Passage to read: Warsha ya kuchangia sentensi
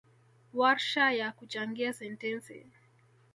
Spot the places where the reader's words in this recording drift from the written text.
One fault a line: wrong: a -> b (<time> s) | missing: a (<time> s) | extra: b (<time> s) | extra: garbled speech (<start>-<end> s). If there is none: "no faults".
no faults